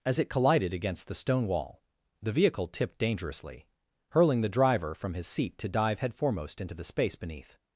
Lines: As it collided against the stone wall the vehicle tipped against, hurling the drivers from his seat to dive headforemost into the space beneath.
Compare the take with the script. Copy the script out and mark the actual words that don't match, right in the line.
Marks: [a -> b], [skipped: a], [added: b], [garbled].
As it collided against the stone wall the vehicle tipped [against, -> dangerously] hurling the [drivers -> driver] from his seat to dive headforemost into the space beneath.